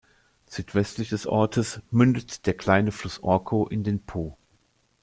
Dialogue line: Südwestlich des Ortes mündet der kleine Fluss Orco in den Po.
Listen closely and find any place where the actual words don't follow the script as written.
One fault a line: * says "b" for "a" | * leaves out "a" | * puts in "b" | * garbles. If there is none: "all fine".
all fine